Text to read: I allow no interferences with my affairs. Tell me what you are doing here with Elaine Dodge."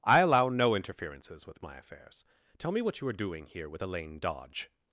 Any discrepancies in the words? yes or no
no